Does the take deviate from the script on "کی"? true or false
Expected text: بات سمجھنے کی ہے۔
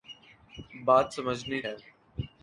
true